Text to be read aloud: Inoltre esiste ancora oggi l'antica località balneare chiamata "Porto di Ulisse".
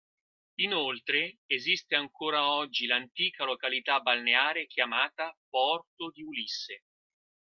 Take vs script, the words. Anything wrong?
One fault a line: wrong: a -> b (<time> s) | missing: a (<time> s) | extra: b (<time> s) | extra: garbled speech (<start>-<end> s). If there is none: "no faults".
no faults